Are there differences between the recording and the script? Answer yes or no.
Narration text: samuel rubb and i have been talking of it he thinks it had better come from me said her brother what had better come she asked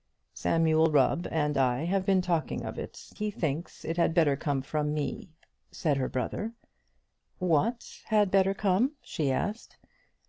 no